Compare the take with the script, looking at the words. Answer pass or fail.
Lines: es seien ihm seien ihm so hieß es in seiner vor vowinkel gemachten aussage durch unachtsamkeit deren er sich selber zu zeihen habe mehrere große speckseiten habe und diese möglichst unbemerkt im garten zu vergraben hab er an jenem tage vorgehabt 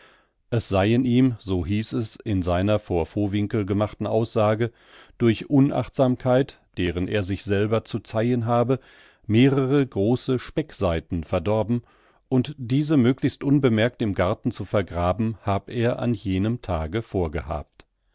fail